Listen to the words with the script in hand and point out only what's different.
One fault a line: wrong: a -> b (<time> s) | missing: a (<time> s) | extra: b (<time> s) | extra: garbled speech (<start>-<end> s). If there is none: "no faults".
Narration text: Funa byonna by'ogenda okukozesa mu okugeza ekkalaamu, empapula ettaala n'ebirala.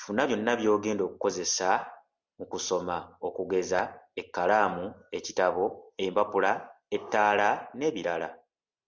extra: kusoma (2.5 s)
extra: ekitabo (5.2 s)